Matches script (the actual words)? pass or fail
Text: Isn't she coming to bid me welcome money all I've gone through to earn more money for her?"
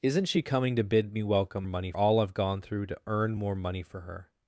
pass